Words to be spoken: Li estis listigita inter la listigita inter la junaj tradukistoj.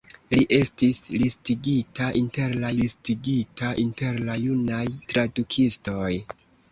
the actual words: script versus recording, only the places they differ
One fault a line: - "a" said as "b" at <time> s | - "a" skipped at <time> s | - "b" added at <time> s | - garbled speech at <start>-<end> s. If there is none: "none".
none